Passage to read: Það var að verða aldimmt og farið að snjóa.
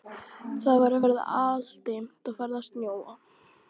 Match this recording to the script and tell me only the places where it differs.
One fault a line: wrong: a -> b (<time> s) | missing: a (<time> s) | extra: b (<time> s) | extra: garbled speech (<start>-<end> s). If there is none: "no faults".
no faults